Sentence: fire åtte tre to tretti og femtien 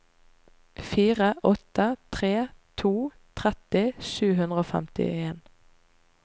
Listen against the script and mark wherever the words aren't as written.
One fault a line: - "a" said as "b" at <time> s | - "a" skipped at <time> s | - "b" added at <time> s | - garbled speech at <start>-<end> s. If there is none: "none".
- "sju hundre" added at 4.1 s